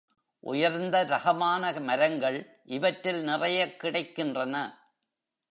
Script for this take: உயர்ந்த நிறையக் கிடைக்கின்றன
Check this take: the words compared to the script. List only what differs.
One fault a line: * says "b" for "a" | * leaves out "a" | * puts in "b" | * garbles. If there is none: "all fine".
* puts in "ரகமான மரங்கள் இவற்றில்"